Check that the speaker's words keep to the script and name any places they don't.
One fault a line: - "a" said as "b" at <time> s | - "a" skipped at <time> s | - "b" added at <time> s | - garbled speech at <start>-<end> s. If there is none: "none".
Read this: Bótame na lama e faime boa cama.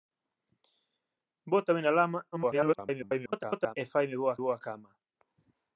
- garbled speech at 2.3-3.8 s
- "boa" added at 4.4 s